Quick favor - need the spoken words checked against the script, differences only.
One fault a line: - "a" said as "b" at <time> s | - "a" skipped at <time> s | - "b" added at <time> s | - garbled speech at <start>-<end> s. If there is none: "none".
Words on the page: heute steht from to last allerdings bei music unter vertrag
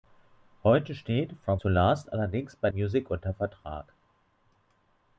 none